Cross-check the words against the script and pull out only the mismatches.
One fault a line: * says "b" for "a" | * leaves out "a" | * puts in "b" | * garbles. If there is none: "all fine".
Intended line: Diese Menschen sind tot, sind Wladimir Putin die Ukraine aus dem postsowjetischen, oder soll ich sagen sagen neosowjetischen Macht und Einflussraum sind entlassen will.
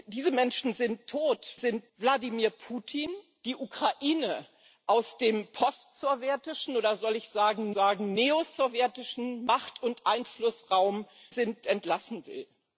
all fine